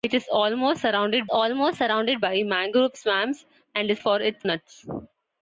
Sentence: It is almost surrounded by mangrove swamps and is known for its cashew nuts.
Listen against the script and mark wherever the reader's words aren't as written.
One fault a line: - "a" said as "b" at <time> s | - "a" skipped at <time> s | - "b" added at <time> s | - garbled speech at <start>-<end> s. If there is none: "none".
- "almost surrounded" added at 1.3 s
- "known" skipped at 4.0 s
- "cashew" skipped at 4.4 s